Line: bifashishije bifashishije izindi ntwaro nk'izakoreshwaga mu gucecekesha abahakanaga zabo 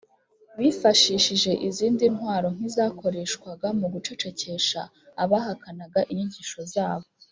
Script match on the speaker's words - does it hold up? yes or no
no